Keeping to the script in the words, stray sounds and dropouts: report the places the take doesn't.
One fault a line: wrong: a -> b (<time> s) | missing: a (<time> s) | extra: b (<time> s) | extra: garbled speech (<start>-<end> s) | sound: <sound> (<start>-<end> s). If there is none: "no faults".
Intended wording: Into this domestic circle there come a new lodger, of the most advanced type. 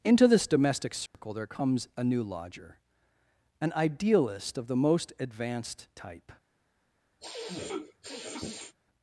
sound: dropout (1.1-1.1 s)
wrong: come -> comes (1.4 s)
extra: an idealist (3.6 s)
sound: sniff (7.2-8.7 s)